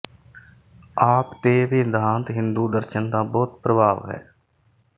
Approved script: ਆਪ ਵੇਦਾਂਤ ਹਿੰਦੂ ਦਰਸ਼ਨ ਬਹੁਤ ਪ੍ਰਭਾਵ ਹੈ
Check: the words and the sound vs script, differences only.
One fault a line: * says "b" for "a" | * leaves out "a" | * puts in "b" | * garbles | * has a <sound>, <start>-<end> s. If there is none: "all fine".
* puts in "ਤੇ"
* puts in "ਦਾ"